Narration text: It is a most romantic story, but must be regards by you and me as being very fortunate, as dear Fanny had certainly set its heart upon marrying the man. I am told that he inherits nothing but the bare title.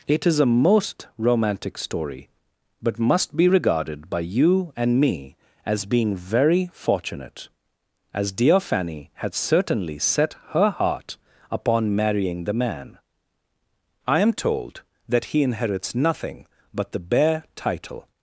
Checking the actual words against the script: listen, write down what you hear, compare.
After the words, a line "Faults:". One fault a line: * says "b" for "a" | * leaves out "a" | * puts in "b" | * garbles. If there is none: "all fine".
It is a most romantic story, but must be regarded by you and me as being very fortunate, as dear Fanny had certainly set her heart upon marrying the man. I am told that he inherits nothing but the bare title.
Faults:
* says "regarded" for "regards"
* says "her" for "its"